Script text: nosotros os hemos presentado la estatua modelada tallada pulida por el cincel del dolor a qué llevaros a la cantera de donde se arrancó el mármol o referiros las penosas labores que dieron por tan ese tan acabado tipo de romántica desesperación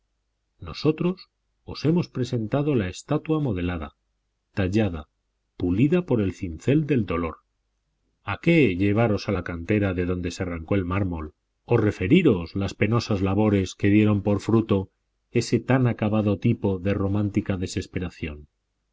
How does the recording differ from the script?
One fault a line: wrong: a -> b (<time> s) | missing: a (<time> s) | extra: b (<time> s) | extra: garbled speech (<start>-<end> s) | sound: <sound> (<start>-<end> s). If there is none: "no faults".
wrong: tan -> fruto (14.4 s)